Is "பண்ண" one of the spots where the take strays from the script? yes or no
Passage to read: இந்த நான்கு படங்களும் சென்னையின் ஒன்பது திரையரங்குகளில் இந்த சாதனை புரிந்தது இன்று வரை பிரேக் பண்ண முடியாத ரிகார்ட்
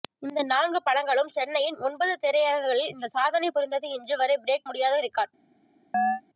yes